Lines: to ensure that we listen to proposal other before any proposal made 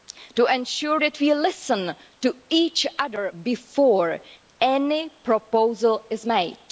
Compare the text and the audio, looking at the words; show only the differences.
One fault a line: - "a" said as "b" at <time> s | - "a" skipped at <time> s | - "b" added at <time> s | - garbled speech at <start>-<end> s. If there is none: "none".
- "proposal" said as "each" at 2.5 s
- "is" added at 6.1 s